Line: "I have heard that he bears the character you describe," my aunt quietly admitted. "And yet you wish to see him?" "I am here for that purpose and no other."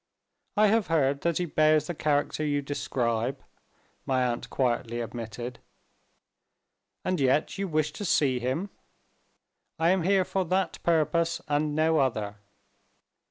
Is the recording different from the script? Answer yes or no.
no